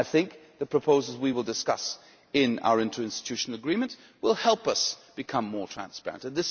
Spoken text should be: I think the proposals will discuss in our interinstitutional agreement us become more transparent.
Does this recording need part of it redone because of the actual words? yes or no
yes